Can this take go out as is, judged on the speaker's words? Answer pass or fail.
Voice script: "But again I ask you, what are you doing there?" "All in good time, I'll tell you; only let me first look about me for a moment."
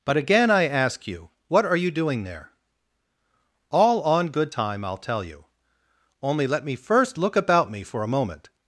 fail